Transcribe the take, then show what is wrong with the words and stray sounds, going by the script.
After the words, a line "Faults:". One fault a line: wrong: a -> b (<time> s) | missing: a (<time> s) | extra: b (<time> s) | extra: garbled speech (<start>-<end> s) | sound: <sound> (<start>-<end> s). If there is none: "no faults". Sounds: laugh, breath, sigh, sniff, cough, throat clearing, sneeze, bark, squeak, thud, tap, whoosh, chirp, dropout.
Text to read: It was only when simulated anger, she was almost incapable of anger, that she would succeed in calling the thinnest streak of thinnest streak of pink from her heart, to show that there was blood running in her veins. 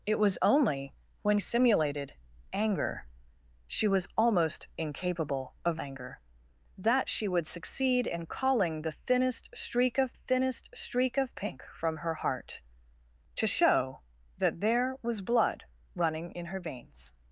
It was only when simulated anger, she was almost incapable of anger, that she would succeed in calling the thinnest streak of thinnest streak of pink from her heart, to show that there was blood running in her veins.
Faults:
no faults